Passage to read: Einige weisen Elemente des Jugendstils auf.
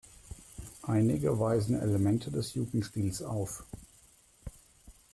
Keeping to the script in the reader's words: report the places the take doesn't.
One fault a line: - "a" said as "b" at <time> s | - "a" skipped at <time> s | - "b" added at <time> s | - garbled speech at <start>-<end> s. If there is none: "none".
none